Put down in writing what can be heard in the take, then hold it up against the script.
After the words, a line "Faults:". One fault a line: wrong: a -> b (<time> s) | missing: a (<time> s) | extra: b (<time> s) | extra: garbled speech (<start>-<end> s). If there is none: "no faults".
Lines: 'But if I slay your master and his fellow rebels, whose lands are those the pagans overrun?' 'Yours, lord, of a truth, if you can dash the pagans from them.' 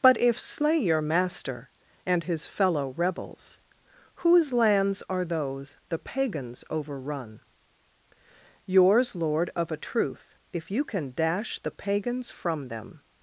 'But if slay your master and his fellow rebels, whose lands are those the pagans overrun?' 'Yours, lord, of a truth, if you can dash the pagans from them.'
Faults:
missing: I (0.4 s)